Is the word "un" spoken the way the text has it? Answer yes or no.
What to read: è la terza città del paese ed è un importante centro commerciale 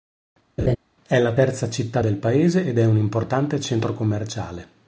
yes